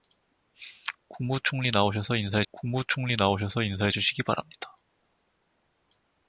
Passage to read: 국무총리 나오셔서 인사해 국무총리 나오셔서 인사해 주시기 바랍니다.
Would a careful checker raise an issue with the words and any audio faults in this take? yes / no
no